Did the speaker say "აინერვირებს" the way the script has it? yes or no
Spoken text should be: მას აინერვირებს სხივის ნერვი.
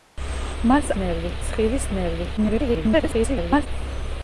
no